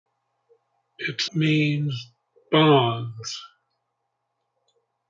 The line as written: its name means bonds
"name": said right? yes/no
no